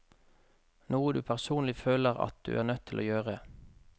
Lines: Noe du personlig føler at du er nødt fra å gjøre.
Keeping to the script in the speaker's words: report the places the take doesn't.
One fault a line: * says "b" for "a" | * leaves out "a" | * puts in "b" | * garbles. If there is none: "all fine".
* says "til" for "fra"